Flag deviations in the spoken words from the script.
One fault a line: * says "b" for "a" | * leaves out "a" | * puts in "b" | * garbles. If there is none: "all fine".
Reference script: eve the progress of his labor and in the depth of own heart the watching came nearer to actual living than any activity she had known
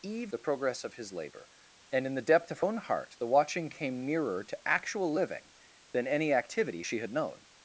all fine